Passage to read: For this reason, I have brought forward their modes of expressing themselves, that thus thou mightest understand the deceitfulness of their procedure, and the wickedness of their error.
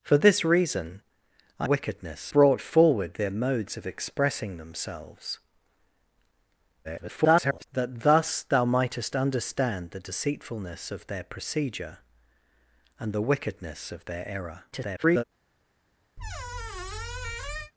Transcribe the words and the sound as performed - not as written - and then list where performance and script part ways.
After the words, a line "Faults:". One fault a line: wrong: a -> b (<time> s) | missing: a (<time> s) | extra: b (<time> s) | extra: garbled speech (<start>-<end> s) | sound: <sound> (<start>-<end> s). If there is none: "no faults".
For this reason, I wickedness brought forward their modes of expressing themselves, [garbled] that thus thou mightest understand the deceitfulness of their procedure, and the wickedness of their error. [garbled]
Faults:
wrong: have -> wickedness (1.6 s)
extra: garbled speech (6.8-7.6 s)
extra: garbled speech (14.7-15.2 s)
sound: squeak (16.2-17.7 s)